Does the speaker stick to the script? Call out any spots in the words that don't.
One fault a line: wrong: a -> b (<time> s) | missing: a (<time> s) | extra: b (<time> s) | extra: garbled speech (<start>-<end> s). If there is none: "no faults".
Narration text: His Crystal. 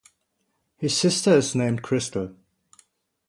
extra: sister is named (1.0 s)